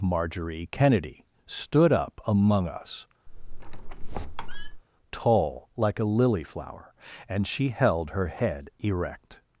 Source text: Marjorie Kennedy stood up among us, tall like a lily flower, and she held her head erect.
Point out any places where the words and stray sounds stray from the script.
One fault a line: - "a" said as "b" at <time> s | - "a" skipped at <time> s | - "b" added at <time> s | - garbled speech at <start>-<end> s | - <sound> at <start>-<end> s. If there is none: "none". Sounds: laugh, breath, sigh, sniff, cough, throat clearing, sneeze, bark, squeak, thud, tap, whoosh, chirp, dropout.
- squeak at 3.3-4.8 s